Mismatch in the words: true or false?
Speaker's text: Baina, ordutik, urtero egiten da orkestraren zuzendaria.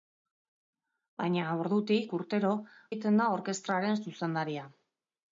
false